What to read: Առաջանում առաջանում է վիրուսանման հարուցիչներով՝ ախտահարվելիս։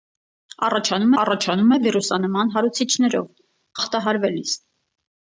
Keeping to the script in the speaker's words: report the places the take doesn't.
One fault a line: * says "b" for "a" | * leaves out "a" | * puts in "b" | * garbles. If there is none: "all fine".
all fine